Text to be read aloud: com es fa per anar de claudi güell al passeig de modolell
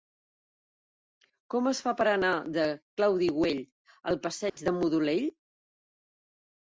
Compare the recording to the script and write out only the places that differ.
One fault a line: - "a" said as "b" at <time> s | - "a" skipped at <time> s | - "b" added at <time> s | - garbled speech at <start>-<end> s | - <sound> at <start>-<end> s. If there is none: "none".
- dropout at 4.5-4.6 s